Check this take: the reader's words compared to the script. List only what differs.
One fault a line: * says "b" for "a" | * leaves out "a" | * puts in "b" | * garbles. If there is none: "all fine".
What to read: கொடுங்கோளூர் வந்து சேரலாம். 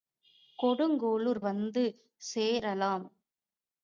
all fine